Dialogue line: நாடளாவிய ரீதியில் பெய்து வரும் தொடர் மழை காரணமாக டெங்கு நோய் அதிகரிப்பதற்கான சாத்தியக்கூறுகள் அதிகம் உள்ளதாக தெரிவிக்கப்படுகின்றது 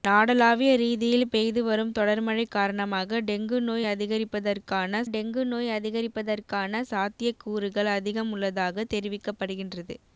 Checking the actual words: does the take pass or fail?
fail